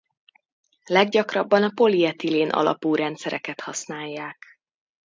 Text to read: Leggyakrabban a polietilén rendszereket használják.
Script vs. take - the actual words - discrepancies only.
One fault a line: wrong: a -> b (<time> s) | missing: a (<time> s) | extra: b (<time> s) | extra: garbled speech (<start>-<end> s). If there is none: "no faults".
extra: alapú (2.5 s)